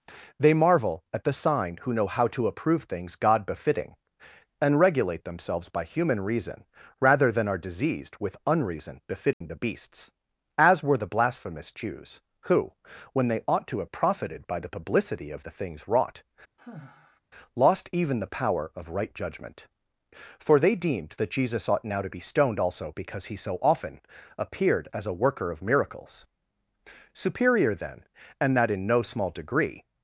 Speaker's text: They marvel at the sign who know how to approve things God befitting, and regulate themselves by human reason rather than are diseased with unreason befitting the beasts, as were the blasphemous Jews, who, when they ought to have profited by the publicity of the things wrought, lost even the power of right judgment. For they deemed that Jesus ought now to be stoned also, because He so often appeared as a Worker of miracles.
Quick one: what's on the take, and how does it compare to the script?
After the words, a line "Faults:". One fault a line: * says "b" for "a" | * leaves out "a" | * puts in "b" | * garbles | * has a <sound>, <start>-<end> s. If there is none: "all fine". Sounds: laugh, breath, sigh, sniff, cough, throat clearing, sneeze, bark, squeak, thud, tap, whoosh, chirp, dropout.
They marvel at the sign who know how to approve things God befitting, and regulate themselves by human reason rather than are diseased with unreason befitting the beasts, as were the blasphemous Jews, who, when they ought to have profited by the publicity of the things wrought, lost even the power of right judgment. For they deemed that Jesus ought now to be stoned also, because He so often appeared as a Worker of miracles. Superior then, and that in no small degree
Faults:
* has a dropout, 9.3-9.4 s
* has a sigh, 16.6-17.2 s
* puts in "Superior then and that in no small degree"